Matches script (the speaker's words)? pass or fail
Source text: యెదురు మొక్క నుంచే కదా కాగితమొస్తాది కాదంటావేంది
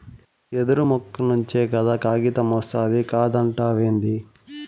pass